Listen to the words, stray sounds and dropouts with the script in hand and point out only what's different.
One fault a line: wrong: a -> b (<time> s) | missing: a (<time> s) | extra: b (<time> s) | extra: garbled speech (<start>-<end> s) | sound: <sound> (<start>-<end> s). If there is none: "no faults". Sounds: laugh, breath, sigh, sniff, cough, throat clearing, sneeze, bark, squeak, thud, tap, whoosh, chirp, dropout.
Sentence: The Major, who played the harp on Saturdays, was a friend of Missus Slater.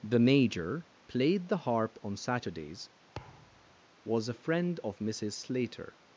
missing: who (0.9 s)
sound: thud (3.1-3.8 s)